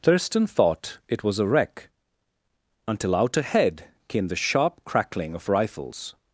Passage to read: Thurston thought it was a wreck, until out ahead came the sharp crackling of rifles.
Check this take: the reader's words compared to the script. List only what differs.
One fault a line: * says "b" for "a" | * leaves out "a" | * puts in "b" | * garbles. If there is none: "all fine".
all fine